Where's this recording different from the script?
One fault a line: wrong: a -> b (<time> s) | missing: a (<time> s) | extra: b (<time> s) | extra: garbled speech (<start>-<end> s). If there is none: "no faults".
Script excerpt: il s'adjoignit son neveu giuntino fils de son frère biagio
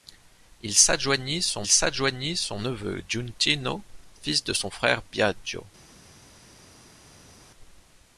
extra: s'adjoignit son (1.7 s)